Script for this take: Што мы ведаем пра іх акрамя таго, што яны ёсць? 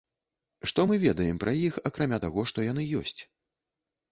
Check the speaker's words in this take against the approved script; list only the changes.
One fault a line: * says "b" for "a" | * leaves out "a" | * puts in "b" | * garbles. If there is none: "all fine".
all fine